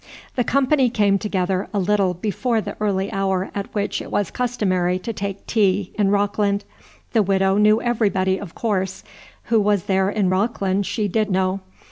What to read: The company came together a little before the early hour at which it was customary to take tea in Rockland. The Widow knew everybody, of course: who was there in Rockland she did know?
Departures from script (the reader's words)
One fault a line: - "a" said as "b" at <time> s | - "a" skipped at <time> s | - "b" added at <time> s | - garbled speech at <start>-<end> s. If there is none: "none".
none